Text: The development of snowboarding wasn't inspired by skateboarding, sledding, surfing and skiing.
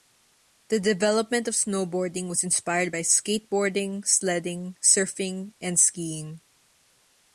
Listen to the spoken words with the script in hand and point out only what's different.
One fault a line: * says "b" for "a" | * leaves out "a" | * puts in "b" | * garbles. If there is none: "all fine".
* says "was" for "wasn't"